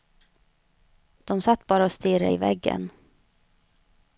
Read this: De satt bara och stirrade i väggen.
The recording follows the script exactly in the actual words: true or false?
true